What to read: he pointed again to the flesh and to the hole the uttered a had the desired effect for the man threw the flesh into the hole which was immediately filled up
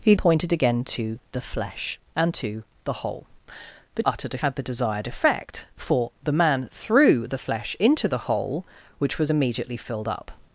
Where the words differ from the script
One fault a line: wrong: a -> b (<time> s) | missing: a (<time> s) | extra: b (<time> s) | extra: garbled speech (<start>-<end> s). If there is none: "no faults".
no faults